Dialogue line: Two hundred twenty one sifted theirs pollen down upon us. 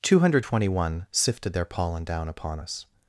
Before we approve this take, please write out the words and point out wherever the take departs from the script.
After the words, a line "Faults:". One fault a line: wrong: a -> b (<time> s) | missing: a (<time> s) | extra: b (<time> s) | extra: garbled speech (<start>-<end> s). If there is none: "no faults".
Two hundred twenty one sifted their pollen down upon us.
Faults:
wrong: theirs -> their (1.5 s)